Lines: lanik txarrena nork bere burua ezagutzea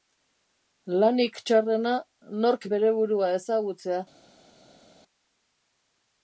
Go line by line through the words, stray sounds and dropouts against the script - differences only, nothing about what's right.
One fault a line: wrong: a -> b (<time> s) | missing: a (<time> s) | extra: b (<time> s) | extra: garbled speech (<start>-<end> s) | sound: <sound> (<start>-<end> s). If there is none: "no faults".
no faults